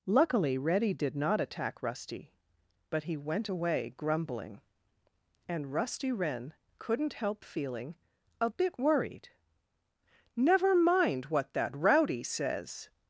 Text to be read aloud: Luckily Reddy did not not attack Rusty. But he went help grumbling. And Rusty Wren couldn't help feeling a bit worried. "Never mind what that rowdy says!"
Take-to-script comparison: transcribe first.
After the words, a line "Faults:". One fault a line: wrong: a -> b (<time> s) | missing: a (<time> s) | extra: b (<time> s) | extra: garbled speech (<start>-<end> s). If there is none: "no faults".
Luckily Reddy did not attack Rusty. But he went away grumbling. And Rusty Wren couldn't help feeling a bit worried. "Never mind what that rowdy says!"
Faults:
missing: not (1.4 s)
wrong: help -> away (3.5 s)